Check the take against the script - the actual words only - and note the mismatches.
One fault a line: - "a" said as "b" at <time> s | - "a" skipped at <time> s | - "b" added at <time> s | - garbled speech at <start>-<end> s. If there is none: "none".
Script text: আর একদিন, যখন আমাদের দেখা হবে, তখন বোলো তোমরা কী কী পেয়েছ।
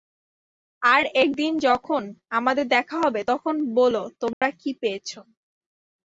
- "কী" skipped at 4.7 s